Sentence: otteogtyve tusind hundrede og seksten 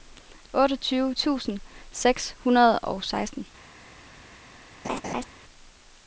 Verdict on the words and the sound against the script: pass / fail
fail